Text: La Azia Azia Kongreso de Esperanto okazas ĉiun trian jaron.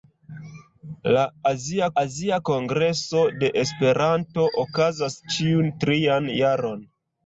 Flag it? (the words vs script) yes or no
no